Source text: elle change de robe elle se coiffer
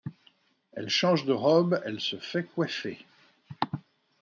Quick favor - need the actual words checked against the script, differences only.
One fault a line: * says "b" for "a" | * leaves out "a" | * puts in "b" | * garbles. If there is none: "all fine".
* puts in "fait"